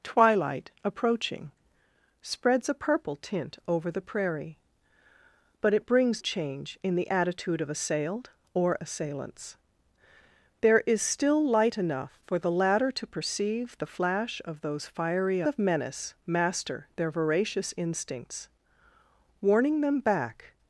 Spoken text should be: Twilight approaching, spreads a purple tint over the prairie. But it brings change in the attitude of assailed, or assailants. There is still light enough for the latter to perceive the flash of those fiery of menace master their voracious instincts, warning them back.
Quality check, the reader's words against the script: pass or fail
pass